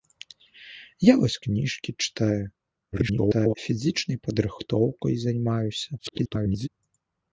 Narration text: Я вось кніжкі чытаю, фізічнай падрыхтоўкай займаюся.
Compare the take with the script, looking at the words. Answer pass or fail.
fail